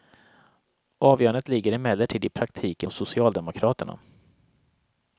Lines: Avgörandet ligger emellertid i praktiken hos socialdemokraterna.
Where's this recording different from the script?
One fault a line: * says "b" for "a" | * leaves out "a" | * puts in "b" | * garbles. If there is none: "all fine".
all fine